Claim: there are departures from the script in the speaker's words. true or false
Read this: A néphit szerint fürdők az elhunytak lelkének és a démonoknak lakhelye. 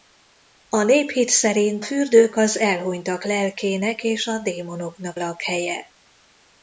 false